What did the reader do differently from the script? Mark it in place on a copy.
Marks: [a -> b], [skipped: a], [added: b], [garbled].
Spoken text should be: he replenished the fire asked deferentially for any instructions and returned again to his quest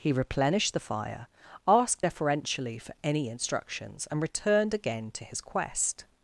he replenished the fire asked deferentially for any instructions and returned again to his quest